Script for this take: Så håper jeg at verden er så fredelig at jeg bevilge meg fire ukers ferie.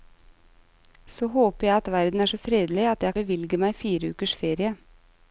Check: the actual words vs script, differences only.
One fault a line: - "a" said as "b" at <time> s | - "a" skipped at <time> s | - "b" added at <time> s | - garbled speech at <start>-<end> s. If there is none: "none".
none